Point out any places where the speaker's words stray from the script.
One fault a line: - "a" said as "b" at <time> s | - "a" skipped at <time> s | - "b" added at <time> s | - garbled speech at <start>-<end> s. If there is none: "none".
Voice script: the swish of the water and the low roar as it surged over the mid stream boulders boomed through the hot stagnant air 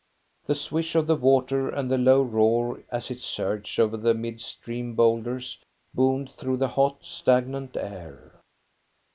none